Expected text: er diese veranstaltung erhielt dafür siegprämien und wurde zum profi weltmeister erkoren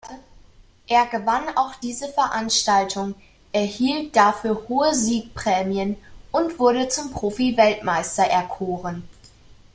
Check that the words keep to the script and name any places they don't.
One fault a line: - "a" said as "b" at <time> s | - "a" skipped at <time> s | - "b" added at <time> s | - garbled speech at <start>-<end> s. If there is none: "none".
- "gewann auch" added at 1.1 s
- "hohe" added at 4.7 s